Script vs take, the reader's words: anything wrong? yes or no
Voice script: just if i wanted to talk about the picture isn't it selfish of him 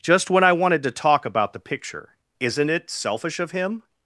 yes